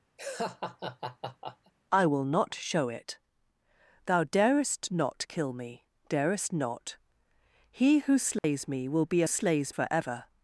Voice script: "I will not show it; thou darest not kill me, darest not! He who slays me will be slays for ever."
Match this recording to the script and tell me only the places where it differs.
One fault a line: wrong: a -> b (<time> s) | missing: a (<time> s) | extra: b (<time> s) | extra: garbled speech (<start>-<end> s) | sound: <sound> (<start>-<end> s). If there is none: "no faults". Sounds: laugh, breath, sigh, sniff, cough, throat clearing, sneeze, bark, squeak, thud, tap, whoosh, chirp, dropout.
sound: laugh (0.2-1.7 s)
sound: dropout (8.4-8.4 s)